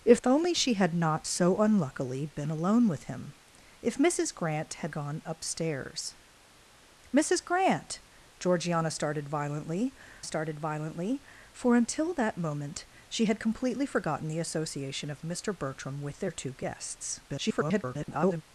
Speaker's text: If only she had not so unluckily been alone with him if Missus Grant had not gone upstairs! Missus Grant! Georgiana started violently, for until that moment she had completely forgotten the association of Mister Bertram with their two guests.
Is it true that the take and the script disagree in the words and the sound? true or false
true